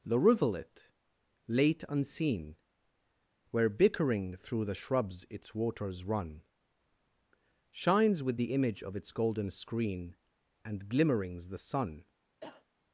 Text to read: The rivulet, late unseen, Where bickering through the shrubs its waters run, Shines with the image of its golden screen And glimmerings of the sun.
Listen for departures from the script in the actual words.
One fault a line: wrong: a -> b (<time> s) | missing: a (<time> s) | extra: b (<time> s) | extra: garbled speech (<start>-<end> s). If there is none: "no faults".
missing: of (11.5 s)